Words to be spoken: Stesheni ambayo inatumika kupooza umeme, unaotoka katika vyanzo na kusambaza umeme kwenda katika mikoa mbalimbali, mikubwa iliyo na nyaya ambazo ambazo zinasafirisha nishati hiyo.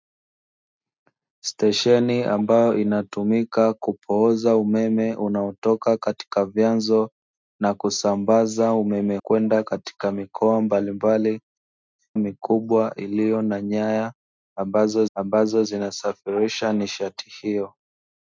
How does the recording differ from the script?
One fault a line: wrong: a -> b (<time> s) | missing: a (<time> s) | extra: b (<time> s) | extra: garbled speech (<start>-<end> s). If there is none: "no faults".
no faults